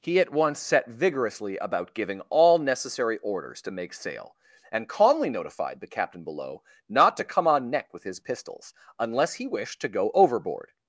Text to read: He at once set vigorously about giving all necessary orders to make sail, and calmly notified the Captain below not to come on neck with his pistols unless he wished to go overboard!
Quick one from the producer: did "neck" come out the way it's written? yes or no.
yes